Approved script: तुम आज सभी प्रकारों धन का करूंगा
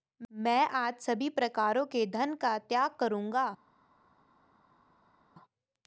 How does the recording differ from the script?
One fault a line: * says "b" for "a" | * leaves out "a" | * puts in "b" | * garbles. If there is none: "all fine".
* says "मैं" for "तुम"
* puts in "के"
* puts in "त्याग"